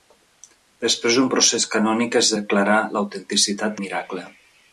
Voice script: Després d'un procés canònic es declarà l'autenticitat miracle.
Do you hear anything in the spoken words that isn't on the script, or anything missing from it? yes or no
no